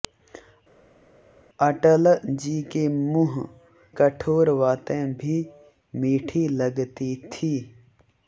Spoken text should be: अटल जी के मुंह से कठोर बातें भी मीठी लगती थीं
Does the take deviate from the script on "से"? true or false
true